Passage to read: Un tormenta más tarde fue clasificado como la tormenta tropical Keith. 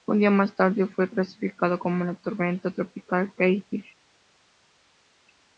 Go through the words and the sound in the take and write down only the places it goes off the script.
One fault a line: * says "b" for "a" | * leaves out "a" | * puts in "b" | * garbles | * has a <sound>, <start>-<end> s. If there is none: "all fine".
* says "día" for "tormenta"